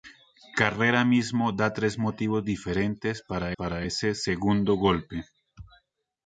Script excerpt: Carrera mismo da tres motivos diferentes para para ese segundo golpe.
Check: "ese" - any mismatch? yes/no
no